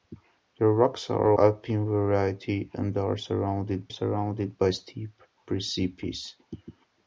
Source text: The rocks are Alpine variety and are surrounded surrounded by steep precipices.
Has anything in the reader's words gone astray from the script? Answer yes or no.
no